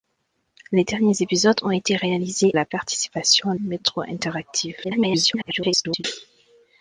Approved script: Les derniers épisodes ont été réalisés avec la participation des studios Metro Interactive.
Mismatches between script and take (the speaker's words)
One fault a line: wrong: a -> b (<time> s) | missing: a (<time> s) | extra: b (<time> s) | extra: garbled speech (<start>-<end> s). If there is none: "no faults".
missing: avec (2.5 s)
missing: des studios (3.5 s)
extra: garbled speech (4.8-6.0 s)